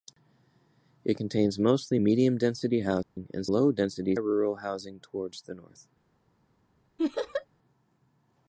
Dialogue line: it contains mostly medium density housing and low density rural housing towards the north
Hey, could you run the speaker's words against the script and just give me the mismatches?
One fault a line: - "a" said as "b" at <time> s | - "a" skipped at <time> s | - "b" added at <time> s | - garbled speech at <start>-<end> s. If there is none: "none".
none